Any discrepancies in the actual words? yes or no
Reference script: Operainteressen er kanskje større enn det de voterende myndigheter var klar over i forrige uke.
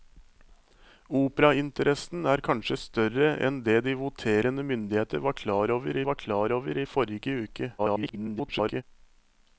yes